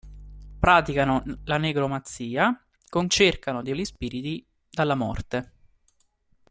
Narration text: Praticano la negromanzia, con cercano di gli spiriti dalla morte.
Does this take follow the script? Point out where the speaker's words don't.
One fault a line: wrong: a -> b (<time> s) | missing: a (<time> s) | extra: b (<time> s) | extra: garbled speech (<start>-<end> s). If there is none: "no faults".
no faults